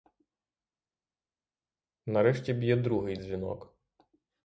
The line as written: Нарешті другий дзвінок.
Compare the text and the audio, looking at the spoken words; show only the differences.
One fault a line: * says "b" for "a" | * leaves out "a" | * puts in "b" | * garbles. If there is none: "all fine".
* puts in "б'є"